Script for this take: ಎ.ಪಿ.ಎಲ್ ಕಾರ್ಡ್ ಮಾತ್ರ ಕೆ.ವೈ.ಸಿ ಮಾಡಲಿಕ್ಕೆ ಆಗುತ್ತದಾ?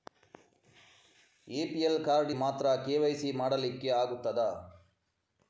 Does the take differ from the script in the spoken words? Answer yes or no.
no